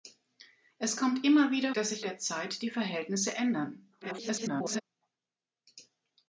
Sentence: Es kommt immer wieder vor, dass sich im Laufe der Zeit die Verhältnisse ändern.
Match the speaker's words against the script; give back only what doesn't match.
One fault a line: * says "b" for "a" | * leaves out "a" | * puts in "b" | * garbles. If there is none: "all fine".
* leaves out "vor"
* leaves out "im Laufe"
* garbles